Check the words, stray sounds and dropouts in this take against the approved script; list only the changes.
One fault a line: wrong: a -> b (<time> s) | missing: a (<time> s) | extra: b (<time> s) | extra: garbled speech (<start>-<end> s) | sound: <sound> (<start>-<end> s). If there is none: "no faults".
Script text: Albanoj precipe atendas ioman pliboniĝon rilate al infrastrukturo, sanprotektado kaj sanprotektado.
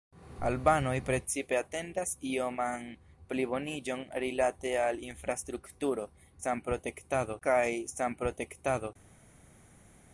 no faults